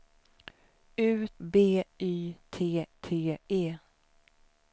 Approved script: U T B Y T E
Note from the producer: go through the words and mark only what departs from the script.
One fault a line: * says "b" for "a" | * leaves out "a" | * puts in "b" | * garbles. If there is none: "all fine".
* leaves out "T"
* puts in "T"